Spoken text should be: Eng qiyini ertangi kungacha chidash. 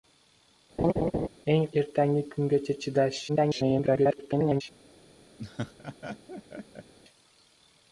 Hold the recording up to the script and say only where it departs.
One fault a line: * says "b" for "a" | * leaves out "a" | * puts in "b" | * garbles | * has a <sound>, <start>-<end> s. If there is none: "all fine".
* has a laugh, 0.8-1.3 s
* leaves out "qiyini"
* garbles
* has a laugh, 5.4-6.9 s